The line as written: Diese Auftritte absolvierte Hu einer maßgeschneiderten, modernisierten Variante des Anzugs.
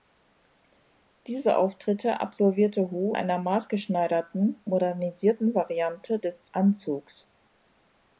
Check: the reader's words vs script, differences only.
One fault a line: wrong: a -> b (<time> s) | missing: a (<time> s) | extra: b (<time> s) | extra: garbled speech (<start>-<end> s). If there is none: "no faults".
no faults